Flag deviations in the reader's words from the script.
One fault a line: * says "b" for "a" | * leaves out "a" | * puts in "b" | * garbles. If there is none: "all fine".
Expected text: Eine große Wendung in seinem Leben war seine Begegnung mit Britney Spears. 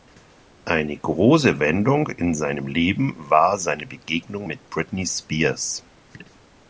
all fine